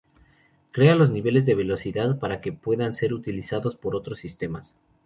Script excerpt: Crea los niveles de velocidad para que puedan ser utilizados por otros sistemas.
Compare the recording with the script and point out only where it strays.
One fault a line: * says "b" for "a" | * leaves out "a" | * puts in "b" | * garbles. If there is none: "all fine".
all fine